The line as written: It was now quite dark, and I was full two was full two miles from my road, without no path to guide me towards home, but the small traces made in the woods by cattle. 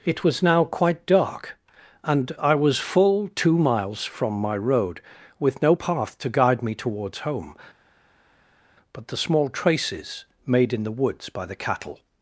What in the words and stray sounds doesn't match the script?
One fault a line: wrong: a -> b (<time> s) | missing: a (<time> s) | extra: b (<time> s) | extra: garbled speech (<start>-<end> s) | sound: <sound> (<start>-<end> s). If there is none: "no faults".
missing: was full two (3.6 s)
wrong: without -> with (5.4 s)
extra: the (11.4 s)